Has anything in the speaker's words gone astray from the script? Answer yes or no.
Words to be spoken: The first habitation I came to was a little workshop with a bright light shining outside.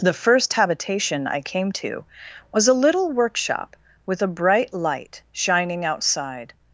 no